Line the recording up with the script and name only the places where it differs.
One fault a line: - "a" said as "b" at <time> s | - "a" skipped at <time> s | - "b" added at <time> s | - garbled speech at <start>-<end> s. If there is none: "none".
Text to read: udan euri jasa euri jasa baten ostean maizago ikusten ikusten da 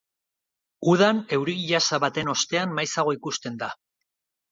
- "euri jasa" skipped at 2.0 s
- "ikusten" skipped at 3.6 s